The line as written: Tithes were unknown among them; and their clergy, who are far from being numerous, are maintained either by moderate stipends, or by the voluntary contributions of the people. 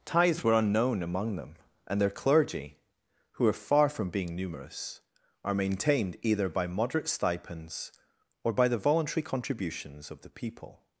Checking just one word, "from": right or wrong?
right